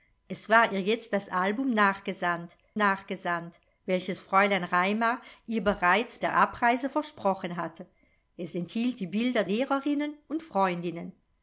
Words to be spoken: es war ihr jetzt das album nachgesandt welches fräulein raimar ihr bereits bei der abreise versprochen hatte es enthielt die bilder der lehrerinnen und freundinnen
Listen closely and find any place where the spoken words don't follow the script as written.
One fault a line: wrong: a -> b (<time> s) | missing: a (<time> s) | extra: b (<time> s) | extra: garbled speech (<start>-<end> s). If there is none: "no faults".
extra: nachgesandt (2.8 s)
missing: bei (6.2 s)
missing: der (9.4 s)